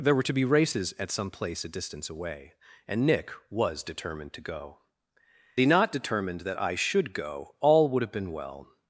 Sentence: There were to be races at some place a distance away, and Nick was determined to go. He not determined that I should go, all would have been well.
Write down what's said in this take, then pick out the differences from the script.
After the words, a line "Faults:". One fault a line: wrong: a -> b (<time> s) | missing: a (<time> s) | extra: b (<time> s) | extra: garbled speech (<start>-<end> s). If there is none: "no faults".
There were to be races at some place a distance away, and Nick was determined to go. He not determined that I should go, all would have been well.
Faults:
no faults